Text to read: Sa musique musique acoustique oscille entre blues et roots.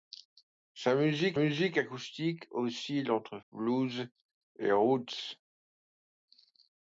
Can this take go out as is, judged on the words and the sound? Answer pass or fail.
pass